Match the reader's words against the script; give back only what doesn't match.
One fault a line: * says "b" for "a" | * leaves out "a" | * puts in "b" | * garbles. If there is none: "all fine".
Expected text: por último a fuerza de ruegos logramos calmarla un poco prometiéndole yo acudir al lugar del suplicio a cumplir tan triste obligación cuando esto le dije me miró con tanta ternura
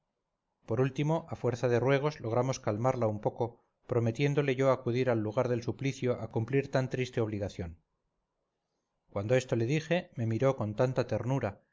all fine